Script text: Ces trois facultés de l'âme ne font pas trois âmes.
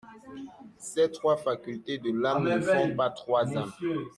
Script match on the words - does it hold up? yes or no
yes